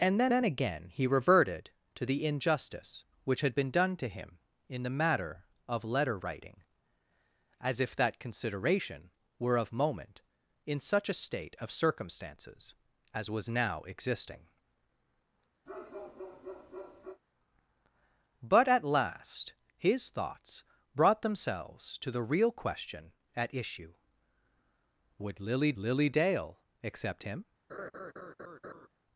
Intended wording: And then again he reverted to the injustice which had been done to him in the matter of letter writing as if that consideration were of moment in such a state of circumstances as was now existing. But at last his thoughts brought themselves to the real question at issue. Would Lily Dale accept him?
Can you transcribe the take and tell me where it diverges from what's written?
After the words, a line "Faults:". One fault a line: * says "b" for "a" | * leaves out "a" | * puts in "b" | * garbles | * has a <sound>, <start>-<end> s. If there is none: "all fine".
And then then again he reverted to the injustice which had been done to him in the matter of letter writing as if that consideration were of moment in such a state of circumstances as was now existing. But at last his thoughts brought themselves to the real question at issue. Would Lily Lily Dale accept him?
Faults:
* puts in "then"
* has a bark, 15.7-17.2 s
* puts in "Lily"
* has a laugh, 27.7-28.9 s